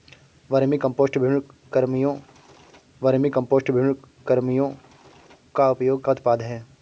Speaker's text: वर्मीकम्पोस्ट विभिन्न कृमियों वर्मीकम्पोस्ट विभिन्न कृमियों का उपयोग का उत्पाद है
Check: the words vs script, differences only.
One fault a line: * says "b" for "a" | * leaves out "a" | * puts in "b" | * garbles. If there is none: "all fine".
all fine